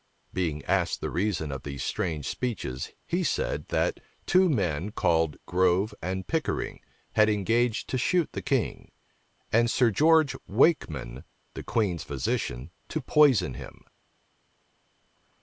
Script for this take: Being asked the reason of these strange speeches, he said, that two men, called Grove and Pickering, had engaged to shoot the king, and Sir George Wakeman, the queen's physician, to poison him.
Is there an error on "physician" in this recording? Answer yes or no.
no